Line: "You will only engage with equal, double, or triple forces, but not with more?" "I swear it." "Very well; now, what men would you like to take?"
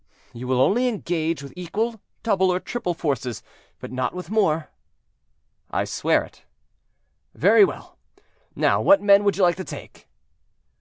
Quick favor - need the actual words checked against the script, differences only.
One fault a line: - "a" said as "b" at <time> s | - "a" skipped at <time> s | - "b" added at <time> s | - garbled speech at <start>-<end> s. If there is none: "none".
none